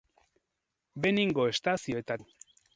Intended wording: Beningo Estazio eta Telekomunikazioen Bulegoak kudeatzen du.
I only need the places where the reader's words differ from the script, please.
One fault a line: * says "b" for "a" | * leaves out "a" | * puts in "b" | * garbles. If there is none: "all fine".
* leaves out "Telekomunikazioen Bulegoak kudeatzen"